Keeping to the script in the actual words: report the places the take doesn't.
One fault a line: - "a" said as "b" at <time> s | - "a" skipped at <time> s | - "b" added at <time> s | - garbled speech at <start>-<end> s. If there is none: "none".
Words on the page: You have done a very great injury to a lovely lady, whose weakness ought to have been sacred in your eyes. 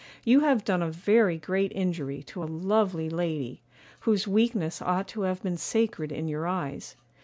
none